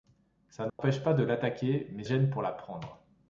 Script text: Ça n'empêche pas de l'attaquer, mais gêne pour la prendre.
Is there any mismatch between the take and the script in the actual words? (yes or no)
no